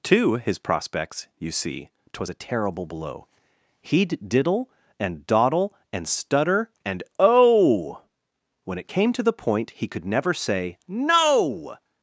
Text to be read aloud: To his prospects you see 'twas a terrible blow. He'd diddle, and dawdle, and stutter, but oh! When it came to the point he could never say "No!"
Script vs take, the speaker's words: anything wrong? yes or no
yes